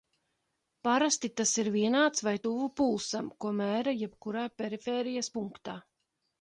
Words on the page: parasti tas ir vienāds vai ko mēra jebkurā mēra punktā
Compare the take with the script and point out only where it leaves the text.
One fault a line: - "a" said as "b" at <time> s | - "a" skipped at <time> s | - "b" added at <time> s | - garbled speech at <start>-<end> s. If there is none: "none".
- "tuvu pulsam" added at 2.5 s
- "mēra" said as "perifērijas" at 4.6 s